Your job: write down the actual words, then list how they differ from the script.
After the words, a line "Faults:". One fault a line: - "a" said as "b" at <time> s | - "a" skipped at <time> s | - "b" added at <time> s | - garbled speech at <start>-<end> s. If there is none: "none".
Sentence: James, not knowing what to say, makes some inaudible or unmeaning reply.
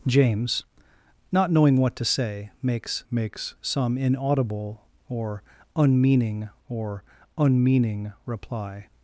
James, not knowing what to say, makes makes some inaudible or unmeaning or unmeaning reply.
Faults:
- "makes" added at 3.1 s
- "or unmeaning" added at 6.7 s